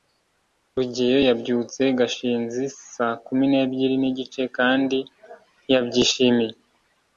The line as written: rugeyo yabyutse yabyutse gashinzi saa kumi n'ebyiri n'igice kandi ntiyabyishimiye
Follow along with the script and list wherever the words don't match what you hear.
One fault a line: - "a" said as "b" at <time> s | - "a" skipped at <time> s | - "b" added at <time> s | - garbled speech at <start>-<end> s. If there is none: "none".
- "yabyutse" skipped at 1.8 s